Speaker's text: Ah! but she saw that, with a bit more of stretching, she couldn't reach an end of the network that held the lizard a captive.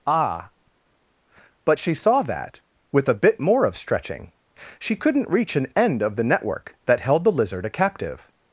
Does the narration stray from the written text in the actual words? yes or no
no